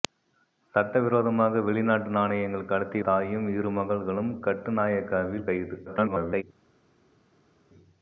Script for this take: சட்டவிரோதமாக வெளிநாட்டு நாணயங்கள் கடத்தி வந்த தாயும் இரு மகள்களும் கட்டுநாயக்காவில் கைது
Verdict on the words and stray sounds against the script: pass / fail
fail